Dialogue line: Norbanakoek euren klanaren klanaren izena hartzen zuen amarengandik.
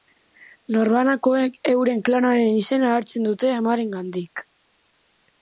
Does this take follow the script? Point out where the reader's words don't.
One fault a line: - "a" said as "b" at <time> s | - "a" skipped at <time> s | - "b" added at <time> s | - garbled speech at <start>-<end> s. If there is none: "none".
- "klanaren" skipped at 2.6 s
- "zuen" said as "dute" at 3.3 s